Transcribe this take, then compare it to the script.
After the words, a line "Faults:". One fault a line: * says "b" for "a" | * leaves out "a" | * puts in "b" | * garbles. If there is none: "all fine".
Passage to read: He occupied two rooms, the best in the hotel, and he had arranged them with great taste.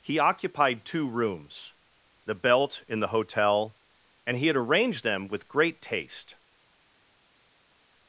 He occupied two rooms, the belt in the hotel, and he had arranged them with great taste.
Faults:
* says "belt" for "best"